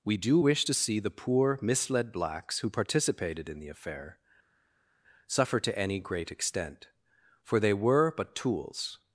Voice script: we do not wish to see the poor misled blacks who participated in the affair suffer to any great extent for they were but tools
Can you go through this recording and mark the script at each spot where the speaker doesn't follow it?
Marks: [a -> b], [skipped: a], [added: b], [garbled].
we do [skipped: not] wish to see the poor misled blacks who participated in the affair suffer to any great extent for they were but tools